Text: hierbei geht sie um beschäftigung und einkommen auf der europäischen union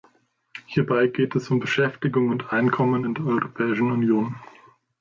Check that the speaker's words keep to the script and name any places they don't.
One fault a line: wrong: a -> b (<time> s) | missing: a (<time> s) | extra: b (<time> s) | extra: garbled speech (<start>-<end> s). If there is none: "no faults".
wrong: sie -> es (1.4 s)
wrong: auf -> in (3.0 s)